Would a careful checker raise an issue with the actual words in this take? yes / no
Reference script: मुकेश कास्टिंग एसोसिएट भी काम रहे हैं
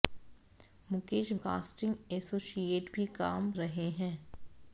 no